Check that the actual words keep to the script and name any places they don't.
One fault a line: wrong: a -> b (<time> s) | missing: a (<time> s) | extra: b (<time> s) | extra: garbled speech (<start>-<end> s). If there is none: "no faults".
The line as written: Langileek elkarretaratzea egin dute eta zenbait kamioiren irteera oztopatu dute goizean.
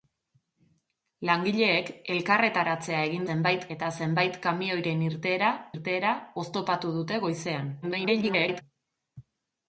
wrong: dute -> zenbait (3.3 s)
extra: irteera (5.7 s)
extra: garbled speech (7.8-8.6 s)